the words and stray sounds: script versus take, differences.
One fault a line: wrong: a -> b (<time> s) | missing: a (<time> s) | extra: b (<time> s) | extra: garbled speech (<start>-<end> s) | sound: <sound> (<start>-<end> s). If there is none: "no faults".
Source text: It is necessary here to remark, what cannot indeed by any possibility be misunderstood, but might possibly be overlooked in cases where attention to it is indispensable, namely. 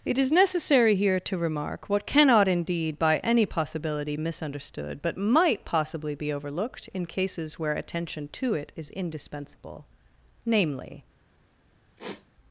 missing: be (4.2 s)
sound: sniff (12.0-12.3 s)